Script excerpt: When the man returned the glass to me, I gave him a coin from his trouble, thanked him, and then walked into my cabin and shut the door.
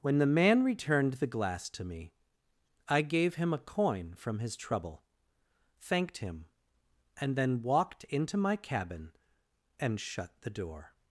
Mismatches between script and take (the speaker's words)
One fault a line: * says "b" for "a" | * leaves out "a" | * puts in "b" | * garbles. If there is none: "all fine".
all fine